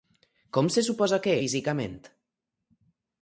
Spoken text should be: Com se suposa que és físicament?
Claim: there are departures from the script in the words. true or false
true